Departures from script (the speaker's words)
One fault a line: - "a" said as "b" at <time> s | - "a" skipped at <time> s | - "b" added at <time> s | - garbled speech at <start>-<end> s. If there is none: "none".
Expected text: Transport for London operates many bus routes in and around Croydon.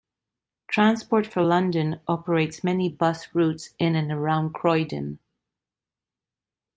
none